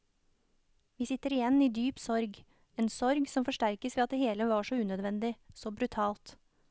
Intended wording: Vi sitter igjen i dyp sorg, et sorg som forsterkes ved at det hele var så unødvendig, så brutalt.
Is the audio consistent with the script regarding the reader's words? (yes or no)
no